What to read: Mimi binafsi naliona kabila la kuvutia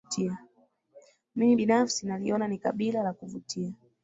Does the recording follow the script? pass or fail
fail